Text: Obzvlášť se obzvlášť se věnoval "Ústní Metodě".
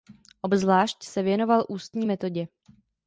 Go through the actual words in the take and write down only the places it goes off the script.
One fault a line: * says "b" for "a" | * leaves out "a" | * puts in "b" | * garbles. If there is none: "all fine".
* leaves out "obzvlášť se"